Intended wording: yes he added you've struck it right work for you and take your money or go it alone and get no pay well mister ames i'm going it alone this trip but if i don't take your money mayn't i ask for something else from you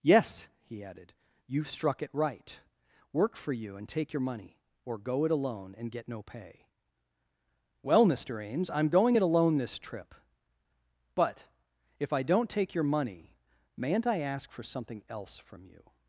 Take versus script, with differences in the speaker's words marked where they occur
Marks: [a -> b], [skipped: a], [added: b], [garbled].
yes he added you've struck it right work for you and take your money or go it alone and get no pay well mister ames i'm going it alone this trip but if i don't take your money mayn't i ask for something else from you